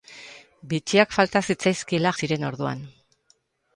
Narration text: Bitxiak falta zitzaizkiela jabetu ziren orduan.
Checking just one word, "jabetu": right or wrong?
wrong